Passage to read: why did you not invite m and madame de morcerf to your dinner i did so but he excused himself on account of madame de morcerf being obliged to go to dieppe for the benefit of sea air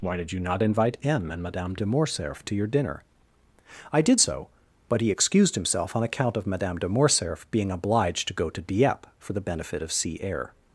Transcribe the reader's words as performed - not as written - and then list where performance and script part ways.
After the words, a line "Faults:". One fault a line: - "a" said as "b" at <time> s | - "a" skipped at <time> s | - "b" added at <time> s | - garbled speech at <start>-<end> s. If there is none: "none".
why did you not invite m and madame de morcerf to your dinner i did so but he excused himself on account of madame de morcerf being obliged to go to dieppe for the benefit of sea air
Faults:
none